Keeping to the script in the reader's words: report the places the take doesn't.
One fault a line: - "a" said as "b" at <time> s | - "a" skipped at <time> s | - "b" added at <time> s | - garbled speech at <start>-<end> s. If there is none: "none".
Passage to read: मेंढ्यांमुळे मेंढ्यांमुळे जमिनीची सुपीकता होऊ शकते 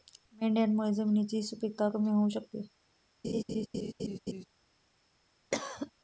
- "मेंढ्यांमुळे" skipped at 0.9 s
- "कमी" added at 1.9 s